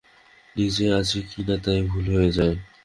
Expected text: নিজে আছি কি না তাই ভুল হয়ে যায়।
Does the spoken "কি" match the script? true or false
true